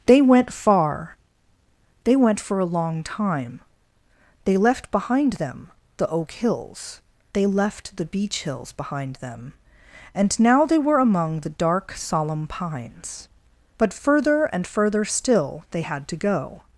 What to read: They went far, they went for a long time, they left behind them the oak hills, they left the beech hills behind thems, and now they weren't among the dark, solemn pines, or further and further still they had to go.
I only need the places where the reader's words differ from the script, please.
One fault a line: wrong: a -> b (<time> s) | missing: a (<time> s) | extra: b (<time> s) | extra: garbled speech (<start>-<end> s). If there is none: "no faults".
wrong: thems -> them (9.2 s)
wrong: weren't -> were (10.8 s)
wrong: or -> but (13.8 s)